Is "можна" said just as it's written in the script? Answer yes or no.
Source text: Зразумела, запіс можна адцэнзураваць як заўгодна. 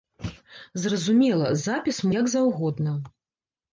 no